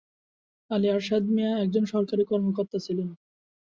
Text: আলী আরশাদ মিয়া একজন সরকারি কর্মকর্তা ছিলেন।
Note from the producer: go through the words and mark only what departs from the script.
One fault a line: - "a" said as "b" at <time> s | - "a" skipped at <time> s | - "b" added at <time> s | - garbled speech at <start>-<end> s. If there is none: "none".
none